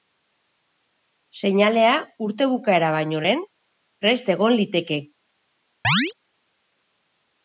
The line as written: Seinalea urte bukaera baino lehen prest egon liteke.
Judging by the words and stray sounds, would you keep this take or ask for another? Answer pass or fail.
fail